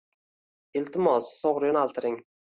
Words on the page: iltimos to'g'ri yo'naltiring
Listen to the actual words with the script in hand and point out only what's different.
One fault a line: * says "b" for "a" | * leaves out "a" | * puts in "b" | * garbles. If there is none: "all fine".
all fine